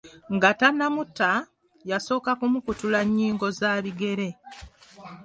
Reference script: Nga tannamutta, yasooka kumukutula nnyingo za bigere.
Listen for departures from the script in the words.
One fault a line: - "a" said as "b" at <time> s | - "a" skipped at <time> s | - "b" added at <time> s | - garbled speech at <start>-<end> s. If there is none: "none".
none